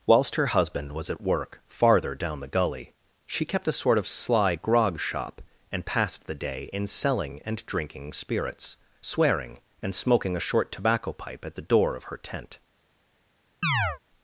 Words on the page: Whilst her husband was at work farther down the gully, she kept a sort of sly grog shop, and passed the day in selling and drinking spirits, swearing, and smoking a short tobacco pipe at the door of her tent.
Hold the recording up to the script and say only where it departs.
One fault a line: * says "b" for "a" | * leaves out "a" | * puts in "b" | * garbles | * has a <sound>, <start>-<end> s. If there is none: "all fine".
* has a chirp, 13.6-14.0 s